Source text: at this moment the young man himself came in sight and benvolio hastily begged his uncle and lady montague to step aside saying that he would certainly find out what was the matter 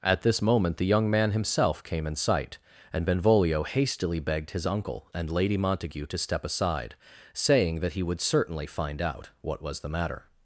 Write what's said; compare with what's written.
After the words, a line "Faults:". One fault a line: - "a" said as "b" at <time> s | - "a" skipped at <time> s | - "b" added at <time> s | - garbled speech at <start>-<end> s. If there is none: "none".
at this moment the young man himself came in sight and benvolio hastily begged his uncle and lady montague to step aside saying that he would certainly find out what was the matter
Faults:
none